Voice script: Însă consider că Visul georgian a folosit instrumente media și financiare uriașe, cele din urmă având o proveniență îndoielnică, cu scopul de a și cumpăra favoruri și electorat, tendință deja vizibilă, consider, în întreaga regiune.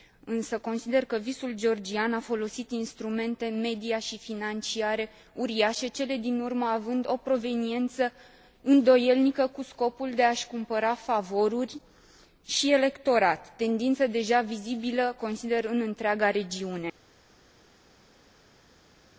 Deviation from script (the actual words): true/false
false